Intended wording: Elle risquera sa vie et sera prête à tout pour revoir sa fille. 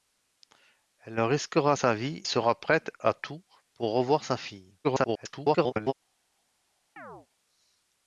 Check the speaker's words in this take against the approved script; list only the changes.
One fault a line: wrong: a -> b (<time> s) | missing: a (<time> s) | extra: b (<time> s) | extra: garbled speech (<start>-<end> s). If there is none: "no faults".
missing: et (2.2 s)
extra: garbled speech (4.8-5.9 s)